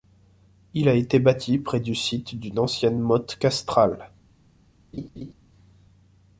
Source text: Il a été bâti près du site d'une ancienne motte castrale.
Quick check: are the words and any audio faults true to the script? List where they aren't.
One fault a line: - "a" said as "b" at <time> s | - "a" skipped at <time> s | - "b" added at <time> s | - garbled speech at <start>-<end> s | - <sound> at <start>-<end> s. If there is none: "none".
- laugh at 4.9-5.3 s